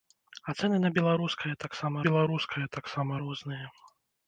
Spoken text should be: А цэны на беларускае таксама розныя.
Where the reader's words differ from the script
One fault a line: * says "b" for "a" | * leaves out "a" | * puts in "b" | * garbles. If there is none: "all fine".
* puts in "беларускае таксама"